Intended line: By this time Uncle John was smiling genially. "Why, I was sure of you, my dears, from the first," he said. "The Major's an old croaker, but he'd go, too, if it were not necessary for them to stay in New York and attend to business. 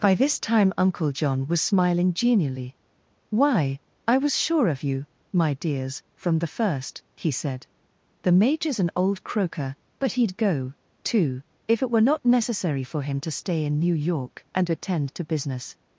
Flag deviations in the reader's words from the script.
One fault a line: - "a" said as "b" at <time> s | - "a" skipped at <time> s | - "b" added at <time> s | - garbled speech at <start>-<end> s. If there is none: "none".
- "them" said as "him" at 13.0 s